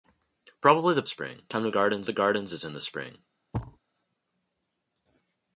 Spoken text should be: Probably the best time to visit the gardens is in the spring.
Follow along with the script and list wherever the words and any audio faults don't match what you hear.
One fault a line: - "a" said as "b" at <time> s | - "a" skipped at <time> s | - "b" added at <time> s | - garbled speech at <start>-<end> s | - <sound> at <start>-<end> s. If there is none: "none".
- "best" said as "spring" at 1.0 s
- "visit" said as "gardens" at 1.7 s
- thud at 3.5-3.8 s